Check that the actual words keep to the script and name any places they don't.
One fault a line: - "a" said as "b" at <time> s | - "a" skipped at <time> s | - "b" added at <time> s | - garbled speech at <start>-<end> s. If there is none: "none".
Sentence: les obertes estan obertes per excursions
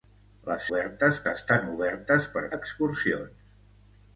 none